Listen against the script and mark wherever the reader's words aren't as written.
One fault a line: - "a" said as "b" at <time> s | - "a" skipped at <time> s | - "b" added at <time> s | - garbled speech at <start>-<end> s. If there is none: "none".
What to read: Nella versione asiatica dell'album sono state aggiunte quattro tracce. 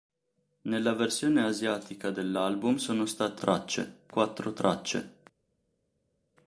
- "aggiunte" said as "tracce" at 3.3 s